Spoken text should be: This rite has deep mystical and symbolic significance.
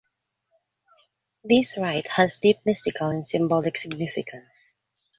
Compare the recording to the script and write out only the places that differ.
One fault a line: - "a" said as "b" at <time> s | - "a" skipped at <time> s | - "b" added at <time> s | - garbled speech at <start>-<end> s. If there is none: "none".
none